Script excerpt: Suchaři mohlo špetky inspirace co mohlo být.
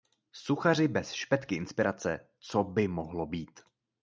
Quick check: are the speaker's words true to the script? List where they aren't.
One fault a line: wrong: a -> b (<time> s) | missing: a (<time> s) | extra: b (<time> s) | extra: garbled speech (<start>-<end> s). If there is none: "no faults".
wrong: mohlo -> bez (0.9 s)
extra: by (2.6 s)